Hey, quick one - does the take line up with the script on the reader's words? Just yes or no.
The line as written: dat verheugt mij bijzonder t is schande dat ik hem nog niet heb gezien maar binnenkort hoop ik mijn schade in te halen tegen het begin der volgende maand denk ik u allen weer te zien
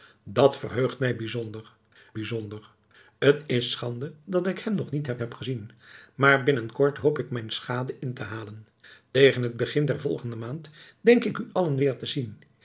no